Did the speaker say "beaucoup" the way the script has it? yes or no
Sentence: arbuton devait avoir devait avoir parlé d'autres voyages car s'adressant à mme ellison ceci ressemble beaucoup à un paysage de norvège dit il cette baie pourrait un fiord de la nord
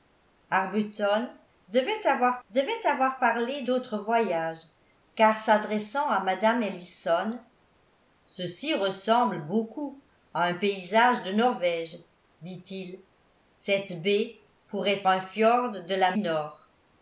yes